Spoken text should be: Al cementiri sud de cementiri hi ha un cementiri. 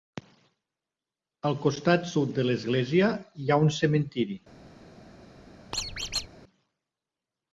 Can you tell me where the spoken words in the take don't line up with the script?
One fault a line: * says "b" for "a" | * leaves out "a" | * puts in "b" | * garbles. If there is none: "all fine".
* says "costat" for "cementiri"
* says "l'església" for "cementiri"